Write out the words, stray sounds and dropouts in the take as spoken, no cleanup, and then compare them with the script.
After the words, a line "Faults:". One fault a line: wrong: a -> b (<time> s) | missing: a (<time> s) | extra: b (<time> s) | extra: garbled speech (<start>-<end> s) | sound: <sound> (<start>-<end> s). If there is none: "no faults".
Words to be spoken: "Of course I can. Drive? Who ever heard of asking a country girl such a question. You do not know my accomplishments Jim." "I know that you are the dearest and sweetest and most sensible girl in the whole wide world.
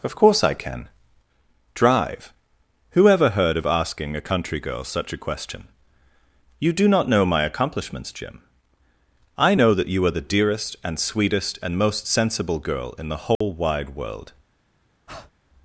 "Of course I can. Drive? Who ever heard of asking a country girl such a question. You do not know my accomplishments Jim." "I know that you are the dearest and sweetest and most sensible girl in the whole wide world.
Faults:
sound: dropout (13.4-13.4 s)
sound: breath (15.1-15.3 s)